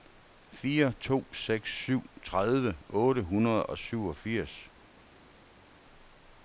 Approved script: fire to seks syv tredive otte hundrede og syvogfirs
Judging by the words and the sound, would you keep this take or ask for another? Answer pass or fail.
pass